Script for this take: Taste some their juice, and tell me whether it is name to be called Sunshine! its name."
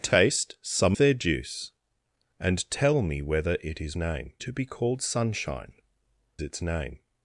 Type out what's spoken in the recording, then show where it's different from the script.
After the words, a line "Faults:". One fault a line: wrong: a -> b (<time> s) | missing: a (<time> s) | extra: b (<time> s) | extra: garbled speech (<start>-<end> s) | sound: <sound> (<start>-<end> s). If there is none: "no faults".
Taste some their juice, and tell me whether it is name to be called Sunshine! its name."
Faults:
no faults